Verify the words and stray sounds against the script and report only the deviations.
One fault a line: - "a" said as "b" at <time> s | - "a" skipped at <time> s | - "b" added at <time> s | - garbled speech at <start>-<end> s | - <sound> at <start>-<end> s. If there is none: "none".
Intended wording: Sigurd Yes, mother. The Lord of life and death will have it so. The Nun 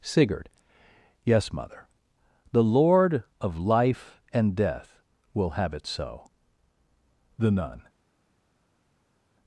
none